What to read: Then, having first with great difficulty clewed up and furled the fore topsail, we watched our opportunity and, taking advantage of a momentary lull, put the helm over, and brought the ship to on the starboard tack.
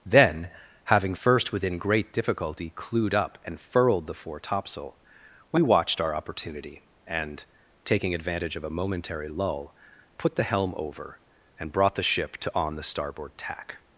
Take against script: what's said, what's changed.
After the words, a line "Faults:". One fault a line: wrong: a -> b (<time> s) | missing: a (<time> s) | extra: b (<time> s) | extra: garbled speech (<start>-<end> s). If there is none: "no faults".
Then, having first within great difficulty clewed up and furled the fore topsail, we watched our opportunity and, taking advantage of a momentary lull, put the helm over, and brought the ship to on the starboard tack.
Faults:
wrong: with -> within (1.5 s)